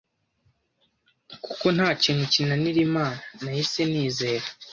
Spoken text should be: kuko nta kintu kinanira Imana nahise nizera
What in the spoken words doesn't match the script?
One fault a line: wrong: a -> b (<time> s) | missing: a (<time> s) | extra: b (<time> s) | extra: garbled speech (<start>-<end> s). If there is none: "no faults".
no faults